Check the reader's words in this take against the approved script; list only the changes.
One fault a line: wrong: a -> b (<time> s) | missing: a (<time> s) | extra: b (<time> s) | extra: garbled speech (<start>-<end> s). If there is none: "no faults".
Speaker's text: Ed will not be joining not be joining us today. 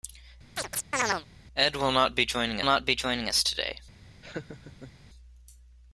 no faults